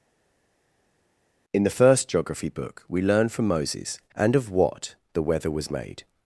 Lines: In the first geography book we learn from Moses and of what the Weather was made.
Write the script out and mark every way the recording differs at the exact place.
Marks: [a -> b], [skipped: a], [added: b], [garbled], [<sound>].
In the first geography book we learn from Moses and of what the Weather was made.